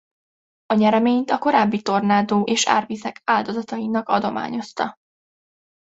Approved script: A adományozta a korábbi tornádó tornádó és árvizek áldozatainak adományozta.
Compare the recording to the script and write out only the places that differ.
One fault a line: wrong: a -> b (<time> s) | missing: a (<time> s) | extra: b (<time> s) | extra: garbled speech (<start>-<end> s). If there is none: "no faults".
wrong: adományozta -> nyereményt (0.7 s)
missing: tornádó (2.4 s)